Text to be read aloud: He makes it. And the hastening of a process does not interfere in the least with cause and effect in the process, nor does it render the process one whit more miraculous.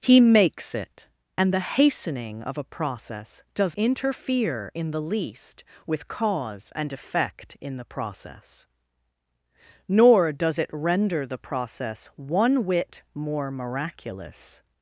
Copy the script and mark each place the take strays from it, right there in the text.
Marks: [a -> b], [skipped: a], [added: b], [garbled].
He makes it. And the hastening of a process does [skipped: not] interfere in the least with cause and effect in the process, nor does it render the process one whit more miraculous.